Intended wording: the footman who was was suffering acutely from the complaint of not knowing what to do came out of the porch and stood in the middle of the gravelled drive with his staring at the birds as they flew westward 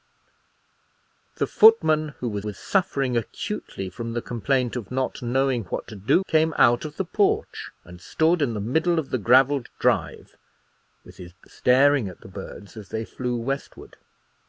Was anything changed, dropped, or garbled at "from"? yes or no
no